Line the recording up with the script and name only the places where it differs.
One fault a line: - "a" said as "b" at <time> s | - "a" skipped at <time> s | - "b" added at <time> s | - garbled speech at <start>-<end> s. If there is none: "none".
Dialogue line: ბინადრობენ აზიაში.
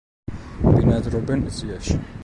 none